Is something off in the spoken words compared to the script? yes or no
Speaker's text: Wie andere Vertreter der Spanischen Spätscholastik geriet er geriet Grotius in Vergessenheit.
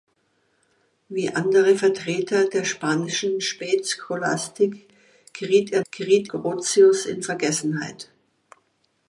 no